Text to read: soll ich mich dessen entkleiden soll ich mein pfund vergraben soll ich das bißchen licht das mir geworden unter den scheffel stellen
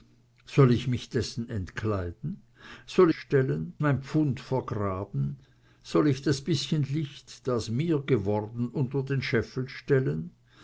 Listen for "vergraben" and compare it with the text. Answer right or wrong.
right